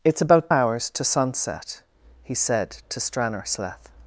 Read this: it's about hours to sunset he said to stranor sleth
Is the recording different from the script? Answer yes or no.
no